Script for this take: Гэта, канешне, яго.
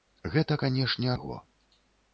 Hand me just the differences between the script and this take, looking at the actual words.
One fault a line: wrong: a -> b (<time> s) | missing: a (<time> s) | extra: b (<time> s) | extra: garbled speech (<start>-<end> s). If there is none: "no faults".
no faults